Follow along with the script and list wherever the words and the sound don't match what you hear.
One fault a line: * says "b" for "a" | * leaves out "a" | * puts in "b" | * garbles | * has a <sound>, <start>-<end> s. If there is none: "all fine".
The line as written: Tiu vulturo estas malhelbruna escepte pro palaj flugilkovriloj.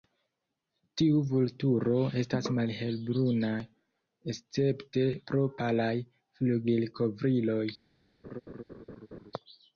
* has a laugh, 8.2-9.3 s